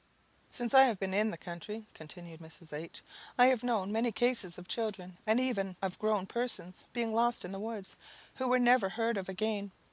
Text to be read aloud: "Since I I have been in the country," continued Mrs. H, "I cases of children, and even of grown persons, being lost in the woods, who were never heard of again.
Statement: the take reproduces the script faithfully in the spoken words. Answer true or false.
false